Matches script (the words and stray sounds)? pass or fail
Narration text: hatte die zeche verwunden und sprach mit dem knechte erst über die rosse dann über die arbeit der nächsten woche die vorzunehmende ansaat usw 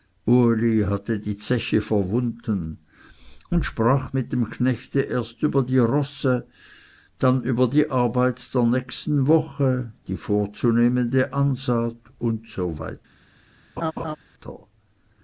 fail